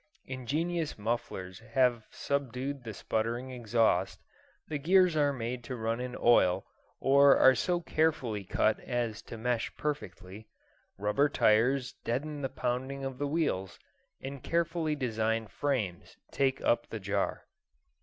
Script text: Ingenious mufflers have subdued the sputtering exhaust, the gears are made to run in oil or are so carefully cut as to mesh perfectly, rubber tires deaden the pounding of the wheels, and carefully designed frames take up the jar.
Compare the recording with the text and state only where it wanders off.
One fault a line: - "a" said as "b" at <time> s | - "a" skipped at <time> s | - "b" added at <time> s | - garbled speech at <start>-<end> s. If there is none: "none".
none